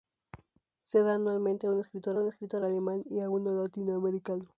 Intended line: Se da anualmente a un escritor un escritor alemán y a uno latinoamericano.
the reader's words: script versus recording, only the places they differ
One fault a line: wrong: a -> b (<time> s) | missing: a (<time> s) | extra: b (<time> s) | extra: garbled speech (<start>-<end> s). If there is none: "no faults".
no faults